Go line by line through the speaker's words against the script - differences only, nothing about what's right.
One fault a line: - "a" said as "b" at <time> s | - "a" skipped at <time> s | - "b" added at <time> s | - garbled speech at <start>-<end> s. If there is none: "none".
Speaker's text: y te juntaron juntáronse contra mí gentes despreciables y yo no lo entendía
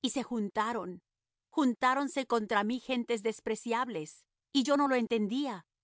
- "te" said as "se" at 0.1 s